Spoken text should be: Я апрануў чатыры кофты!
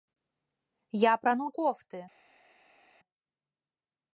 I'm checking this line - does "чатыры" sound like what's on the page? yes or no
no